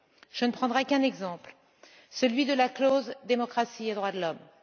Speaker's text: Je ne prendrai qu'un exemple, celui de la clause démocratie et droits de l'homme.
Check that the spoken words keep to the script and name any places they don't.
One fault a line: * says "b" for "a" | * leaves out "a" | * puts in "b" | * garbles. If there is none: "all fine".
all fine